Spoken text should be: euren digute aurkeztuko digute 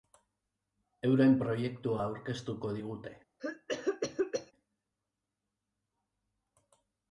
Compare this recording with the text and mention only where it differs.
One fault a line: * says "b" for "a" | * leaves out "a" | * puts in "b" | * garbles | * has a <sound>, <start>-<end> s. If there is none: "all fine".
* says "proiektua" for "digute"
* has a cough, 3.4-4.5 s